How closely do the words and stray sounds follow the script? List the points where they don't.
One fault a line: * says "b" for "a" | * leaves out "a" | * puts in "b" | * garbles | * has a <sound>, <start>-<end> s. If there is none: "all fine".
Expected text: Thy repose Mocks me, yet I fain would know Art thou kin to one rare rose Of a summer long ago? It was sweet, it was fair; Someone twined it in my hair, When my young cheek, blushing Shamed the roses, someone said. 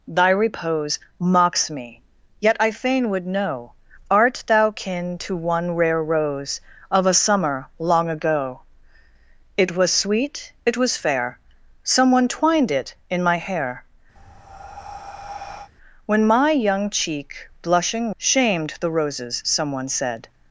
* has a breath, 14.2-15.7 s